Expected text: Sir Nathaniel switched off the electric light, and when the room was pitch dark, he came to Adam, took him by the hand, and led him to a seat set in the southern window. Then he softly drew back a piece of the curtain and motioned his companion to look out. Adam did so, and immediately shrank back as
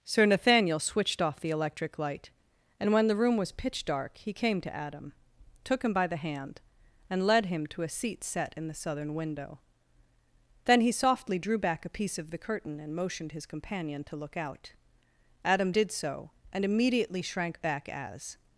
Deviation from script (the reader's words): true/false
false